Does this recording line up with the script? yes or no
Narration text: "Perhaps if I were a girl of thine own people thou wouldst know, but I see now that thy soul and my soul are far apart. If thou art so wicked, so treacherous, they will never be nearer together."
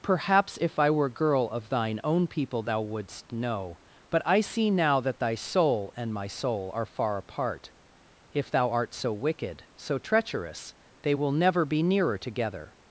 no